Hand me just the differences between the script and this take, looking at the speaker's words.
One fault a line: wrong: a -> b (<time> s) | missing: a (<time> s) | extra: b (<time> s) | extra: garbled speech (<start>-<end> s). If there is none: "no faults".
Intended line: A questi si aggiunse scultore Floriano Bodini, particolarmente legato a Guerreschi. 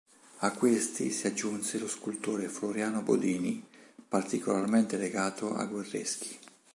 extra: lo (1.8 s)